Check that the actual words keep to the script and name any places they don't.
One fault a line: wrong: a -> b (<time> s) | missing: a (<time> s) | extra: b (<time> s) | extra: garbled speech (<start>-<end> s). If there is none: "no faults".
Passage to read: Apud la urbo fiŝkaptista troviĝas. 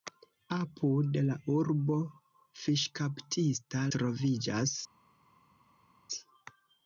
no faults